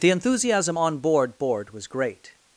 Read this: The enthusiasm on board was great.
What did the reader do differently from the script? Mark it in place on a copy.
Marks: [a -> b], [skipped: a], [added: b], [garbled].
The enthusiasm on board [added: board] was great.